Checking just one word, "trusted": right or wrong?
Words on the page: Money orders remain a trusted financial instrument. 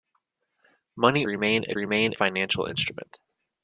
wrong